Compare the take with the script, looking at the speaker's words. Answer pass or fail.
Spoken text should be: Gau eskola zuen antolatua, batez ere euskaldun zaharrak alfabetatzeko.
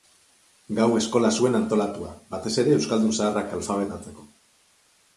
pass